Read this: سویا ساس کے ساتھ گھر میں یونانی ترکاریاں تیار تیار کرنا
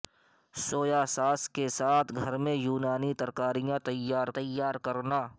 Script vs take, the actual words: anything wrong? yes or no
no